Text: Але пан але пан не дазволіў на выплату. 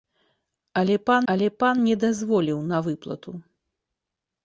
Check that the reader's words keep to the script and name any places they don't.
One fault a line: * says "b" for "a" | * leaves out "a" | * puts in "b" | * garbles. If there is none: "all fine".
all fine